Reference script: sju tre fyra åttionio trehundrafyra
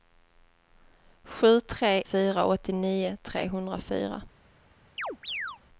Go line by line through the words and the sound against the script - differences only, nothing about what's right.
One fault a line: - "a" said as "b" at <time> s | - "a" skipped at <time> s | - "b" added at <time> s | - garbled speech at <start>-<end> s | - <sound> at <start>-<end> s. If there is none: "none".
- chirp at 5.0-5.6 s